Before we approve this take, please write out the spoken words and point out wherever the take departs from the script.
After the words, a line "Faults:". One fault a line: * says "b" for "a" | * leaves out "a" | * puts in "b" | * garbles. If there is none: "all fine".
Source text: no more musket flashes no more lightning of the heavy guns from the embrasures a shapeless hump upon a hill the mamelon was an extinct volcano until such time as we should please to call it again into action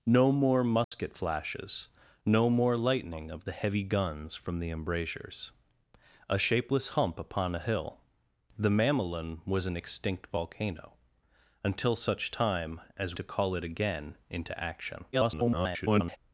no more musket flashes no more lightning of the heavy guns from the embrasures a shapeless hump upon a hill the mamelon was an extinct volcano until such time as to call it again into action [garbled]
Faults:
* leaves out "we should please"
* garbles